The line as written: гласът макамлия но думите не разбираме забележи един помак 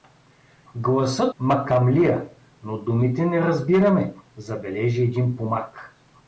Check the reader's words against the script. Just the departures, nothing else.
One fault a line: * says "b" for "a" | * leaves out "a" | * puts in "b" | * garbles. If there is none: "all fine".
all fine